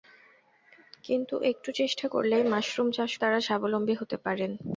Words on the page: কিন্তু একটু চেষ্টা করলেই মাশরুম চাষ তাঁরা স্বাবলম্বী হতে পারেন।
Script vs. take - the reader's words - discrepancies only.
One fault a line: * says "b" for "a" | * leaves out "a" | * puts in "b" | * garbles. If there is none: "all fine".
all fine